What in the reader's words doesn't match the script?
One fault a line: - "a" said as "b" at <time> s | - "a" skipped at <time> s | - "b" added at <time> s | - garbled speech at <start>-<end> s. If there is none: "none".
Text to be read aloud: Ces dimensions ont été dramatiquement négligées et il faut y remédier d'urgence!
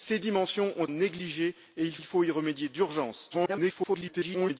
- "été dramatiquement" skipped at 0.9 s
- "il" added at 2.0 s
- garbled speech at 3.3-4.6 s